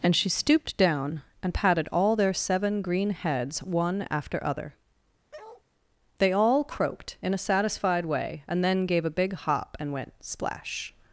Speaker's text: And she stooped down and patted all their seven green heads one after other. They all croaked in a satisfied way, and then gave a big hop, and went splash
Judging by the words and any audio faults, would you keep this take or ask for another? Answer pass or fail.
fail